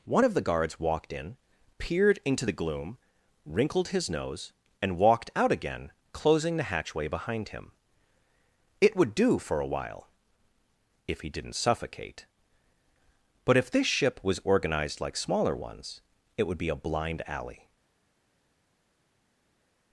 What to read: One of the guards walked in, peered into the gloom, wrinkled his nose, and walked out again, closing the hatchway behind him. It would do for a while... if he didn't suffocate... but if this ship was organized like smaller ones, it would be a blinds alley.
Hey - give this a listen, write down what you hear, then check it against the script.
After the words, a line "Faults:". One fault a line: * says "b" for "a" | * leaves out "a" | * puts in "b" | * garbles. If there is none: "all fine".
One of the guards walked in, peered into the gloom, wrinkled his nose, and walked out again, closing the hatchway behind him. It would do for a while... if he didn't suffocate... but if this ship was organized like smaller ones, it would be a blind alley.
Faults:
* says "blind" for "blinds"